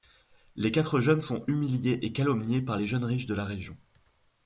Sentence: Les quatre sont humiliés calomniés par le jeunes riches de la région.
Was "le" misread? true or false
true